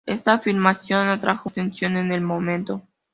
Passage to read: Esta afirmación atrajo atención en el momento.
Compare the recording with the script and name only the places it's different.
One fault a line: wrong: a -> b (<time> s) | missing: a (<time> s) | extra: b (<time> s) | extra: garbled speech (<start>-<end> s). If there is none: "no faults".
no faults